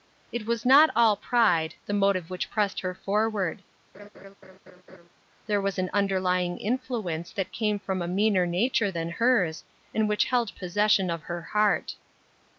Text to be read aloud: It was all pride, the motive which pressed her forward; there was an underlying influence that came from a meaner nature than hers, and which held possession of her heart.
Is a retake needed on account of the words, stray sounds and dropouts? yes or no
yes